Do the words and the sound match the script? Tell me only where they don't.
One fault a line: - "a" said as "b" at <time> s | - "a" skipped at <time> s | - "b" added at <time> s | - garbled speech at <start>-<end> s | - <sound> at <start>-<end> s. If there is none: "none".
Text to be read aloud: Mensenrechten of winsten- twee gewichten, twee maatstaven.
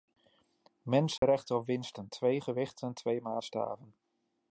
- dropout at 1.2-1.2 s